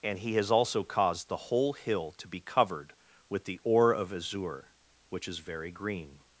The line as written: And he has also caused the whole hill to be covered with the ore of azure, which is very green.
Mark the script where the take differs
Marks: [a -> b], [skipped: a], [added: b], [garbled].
And he has also caused the whole hill to be covered with the ore of azure, which is very green.